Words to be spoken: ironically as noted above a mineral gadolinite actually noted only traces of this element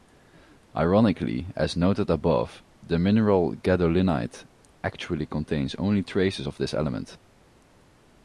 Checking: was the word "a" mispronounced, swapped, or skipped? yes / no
yes